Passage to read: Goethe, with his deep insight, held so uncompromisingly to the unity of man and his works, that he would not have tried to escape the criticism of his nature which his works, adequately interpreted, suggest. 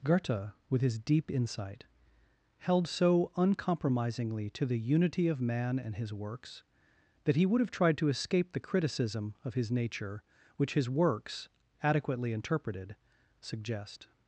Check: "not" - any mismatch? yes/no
yes